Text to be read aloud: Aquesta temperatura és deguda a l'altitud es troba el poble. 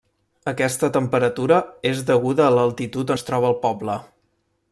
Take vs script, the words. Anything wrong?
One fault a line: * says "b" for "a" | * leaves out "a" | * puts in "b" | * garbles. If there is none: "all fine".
all fine